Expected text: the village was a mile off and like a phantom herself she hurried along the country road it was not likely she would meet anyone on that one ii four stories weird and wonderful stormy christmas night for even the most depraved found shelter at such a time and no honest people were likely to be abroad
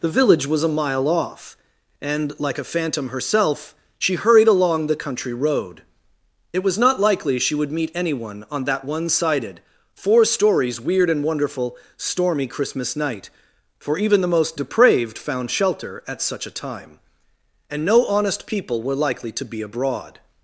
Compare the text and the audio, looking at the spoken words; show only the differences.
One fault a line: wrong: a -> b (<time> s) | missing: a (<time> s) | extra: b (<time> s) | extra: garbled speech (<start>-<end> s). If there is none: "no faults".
wrong: ii -> sided (9.1 s)